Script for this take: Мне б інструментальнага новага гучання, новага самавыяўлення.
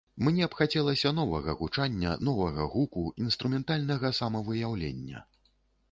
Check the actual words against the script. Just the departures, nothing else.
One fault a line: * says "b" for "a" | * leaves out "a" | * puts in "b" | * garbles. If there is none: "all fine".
* says "хацелася" for "інструментальнага"
* puts in "гуку інструментальнага"